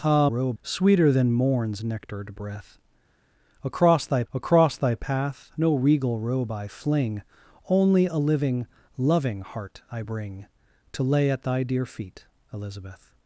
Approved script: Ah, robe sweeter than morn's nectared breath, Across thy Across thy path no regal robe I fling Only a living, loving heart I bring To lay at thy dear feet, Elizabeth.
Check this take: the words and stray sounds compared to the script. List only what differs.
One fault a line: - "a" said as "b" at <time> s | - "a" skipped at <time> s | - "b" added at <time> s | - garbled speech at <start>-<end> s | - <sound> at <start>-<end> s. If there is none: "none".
none